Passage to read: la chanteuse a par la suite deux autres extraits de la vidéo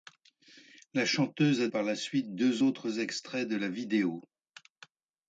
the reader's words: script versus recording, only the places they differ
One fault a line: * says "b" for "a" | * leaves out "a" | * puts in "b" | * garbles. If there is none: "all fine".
all fine